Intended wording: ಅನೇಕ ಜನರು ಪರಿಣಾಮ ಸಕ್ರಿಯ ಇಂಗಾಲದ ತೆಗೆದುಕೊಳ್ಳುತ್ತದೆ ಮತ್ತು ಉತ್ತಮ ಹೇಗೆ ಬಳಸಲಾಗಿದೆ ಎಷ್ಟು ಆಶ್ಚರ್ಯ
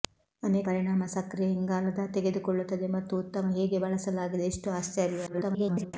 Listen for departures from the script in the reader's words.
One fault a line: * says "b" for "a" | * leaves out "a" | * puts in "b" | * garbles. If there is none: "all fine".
* leaves out "ಜನರು"
* garbles